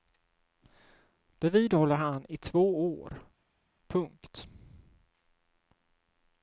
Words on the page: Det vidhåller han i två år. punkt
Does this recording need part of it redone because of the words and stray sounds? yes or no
no